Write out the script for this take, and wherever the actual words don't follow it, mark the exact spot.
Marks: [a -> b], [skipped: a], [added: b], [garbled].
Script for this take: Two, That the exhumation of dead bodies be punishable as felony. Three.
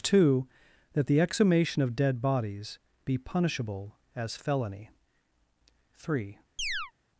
Two, That the exhumation of dead bodies be punishable as felony. Three.